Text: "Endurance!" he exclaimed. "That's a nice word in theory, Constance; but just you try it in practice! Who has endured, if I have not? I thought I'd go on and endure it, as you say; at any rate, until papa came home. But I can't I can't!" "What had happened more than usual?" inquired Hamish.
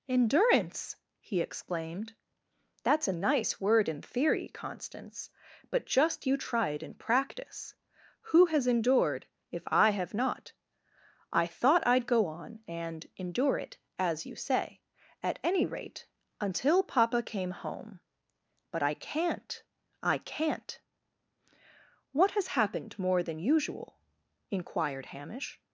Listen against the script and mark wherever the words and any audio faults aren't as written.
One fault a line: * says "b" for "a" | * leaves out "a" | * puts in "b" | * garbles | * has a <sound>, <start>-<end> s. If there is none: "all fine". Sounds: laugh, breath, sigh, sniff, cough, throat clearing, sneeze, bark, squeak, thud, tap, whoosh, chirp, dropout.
* says "has" for "had"